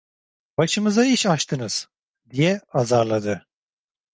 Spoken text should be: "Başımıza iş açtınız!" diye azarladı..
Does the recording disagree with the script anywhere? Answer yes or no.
no